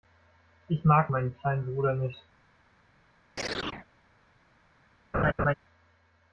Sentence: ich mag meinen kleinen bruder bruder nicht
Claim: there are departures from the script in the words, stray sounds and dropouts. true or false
true